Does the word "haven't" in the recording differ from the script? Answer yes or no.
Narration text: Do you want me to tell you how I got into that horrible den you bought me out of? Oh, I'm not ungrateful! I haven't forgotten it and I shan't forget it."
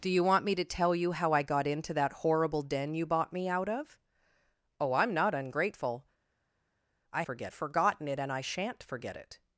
yes